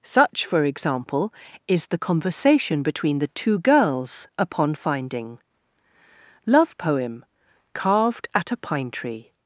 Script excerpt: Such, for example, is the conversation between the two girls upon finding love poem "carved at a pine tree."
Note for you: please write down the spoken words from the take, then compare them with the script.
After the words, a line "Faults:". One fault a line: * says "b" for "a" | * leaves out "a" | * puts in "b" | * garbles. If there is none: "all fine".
Such, for example, is the conversation between the two girls upon finding love poem "carved at a pine tree."
Faults:
all fine